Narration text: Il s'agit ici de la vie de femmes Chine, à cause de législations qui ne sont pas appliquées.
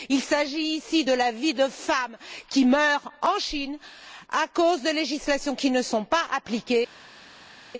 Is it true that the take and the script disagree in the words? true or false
true